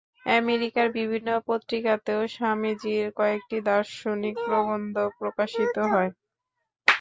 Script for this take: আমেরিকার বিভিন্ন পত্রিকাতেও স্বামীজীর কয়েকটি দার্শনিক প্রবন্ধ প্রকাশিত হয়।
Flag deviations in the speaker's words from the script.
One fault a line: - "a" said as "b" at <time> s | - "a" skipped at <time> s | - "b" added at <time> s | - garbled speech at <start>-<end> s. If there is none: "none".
none